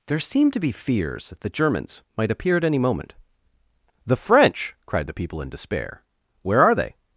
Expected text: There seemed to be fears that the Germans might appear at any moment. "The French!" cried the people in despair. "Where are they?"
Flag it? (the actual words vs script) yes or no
no